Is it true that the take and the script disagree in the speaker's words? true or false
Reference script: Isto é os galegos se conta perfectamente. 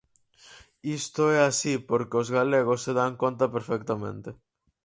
true